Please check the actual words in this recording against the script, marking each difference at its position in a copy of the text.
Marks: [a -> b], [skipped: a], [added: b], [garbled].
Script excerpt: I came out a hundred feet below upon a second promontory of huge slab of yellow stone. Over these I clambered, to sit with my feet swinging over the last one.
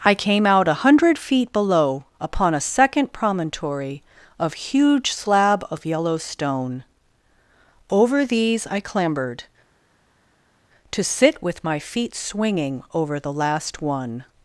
I came out a hundred feet below upon a second promontory of huge slab of yellow stone. Over these I clambered, to sit with my feet swinging over the last one.